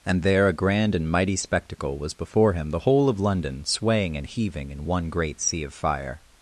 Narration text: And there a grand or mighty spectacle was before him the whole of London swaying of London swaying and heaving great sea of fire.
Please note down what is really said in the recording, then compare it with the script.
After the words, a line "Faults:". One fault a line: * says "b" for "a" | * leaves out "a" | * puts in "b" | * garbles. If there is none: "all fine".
And there a grand and mighty spectacle was before him the whole of London swaying and heaving in one great sea of fire.
Faults:
* says "and" for "or"
* says "and heaving in one" for "of London swaying and heaving"